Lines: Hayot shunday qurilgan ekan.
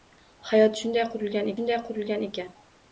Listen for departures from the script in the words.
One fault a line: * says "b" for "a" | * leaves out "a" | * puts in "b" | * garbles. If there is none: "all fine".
* puts in "shunday qurilgan"